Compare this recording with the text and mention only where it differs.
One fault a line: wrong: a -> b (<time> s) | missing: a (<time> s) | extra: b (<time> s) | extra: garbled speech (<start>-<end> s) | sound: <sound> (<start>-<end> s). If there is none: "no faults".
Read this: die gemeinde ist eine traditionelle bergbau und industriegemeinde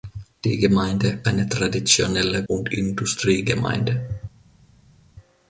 missing: ist (1.2 s)
missing: bergbau (2.4 s)